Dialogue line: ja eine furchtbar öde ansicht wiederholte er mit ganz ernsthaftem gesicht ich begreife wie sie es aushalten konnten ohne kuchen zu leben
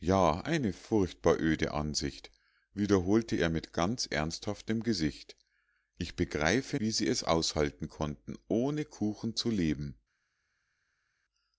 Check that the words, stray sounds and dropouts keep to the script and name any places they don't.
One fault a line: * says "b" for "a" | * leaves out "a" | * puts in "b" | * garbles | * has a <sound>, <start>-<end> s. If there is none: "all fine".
all fine